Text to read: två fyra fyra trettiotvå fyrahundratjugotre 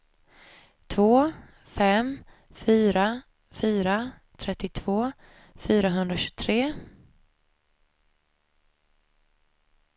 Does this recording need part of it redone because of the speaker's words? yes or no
yes